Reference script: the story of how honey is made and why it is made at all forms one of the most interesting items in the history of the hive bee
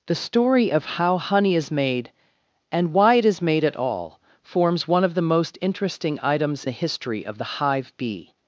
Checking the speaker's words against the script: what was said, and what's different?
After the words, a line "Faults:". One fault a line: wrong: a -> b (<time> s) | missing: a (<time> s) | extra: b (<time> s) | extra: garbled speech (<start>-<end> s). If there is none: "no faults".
the story of how honey is made and why it is made at all forms one of the most interesting items the history of the hive bee
Faults:
missing: in (6.7 s)